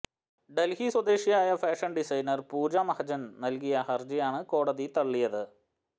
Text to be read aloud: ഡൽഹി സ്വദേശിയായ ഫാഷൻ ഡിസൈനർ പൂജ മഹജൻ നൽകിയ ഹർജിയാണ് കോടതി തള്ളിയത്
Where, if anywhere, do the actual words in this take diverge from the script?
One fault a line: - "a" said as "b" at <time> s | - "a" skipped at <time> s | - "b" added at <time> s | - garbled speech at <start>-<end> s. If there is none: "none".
none